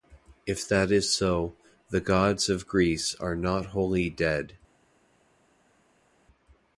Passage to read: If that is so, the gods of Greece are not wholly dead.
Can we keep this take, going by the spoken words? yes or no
yes